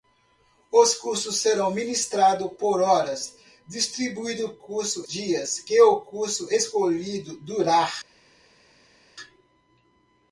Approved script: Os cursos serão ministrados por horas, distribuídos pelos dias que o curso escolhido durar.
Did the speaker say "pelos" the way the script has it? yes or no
no